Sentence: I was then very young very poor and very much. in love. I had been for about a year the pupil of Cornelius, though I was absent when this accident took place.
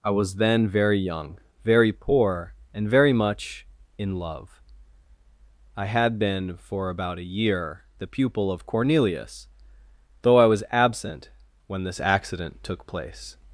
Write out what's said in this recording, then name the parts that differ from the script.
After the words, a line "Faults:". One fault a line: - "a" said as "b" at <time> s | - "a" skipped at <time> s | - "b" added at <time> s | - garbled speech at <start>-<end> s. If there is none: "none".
I was then very young very poor and very much. in love. I had been for about a year the pupil of Cornelius, though I was absent when this accident took place.
Faults:
none